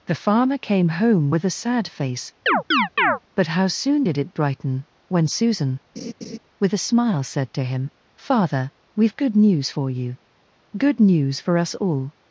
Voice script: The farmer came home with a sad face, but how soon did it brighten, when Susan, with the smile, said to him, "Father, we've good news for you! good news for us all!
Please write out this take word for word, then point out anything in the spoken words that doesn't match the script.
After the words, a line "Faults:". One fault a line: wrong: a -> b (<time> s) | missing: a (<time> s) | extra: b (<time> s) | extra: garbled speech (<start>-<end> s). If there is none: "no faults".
The farmer came home with a sad face, but how soon did it brighten, when Susan, with a smile, said to him, "Father, we've good news for you! good news for us all!
Faults:
wrong: the -> a (6.7 s)